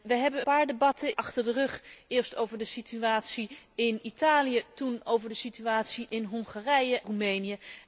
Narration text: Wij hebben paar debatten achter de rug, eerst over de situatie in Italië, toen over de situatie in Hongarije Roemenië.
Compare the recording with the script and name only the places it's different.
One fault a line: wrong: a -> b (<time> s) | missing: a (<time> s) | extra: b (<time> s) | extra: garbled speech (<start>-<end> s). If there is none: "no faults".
no faults